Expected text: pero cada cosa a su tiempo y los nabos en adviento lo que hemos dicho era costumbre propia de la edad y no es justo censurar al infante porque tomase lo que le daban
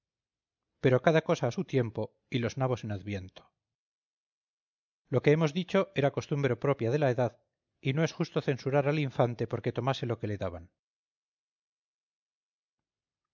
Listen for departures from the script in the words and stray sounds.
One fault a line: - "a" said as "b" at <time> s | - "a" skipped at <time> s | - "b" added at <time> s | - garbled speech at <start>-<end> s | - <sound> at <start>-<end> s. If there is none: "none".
none